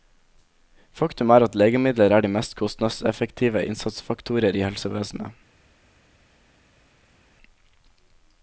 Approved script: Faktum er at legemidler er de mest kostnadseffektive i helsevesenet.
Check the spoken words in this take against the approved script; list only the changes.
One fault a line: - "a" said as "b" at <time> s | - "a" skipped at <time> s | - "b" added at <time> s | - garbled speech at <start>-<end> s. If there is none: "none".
- "innsatsfaktorer" added at 3.7 s